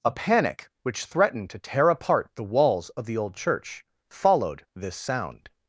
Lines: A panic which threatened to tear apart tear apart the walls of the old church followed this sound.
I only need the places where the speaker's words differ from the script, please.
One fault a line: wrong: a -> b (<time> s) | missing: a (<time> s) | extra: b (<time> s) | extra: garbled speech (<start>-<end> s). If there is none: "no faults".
missing: tear apart (2.3 s)